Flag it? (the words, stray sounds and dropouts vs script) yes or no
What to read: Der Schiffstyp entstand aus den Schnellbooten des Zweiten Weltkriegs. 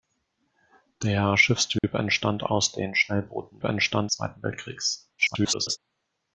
yes